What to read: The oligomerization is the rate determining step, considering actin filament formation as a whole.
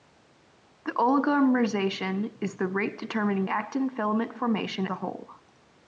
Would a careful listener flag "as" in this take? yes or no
yes